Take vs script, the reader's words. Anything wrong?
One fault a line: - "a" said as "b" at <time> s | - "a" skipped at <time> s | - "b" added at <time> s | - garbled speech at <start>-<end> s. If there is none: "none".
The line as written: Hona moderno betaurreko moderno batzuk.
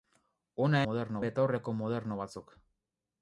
none